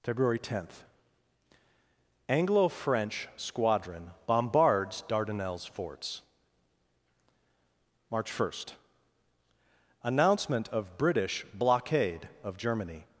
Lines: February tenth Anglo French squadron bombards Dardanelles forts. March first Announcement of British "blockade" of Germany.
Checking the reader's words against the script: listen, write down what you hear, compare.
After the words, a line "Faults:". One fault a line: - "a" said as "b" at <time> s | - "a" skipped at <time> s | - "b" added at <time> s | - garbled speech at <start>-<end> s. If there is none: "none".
February tenth Anglo French squadron bombards Dardanelles forts. March first Announcement of British "blockade" of Germany.
Faults:
none